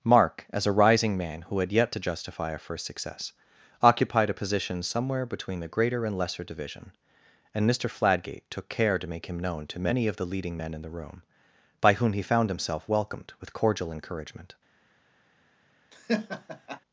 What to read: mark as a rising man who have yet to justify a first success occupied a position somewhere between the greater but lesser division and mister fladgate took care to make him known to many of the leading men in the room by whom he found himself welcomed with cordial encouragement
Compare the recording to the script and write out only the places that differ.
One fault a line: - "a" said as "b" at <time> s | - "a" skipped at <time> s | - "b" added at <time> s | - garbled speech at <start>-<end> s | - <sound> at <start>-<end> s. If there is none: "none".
- "have" said as "had" at 1.6 s
- "but" said as "and" at 6.0 s
- laugh at 15.9-16.8 s